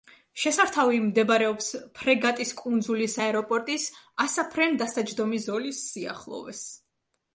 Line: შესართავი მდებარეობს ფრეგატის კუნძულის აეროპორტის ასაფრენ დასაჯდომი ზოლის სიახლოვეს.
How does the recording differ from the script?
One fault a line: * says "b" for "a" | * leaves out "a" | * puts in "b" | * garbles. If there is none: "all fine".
all fine